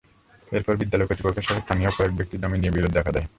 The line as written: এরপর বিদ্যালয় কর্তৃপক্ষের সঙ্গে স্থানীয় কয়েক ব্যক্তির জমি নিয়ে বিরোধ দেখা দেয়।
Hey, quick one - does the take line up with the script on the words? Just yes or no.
yes